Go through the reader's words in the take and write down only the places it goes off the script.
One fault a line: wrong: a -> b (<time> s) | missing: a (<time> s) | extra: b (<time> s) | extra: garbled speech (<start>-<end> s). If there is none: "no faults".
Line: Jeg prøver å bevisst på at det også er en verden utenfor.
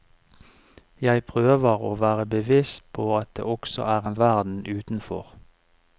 extra: være (1.9 s)